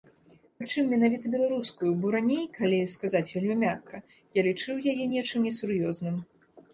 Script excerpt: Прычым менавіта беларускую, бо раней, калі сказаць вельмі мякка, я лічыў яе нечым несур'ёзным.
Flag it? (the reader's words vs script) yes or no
no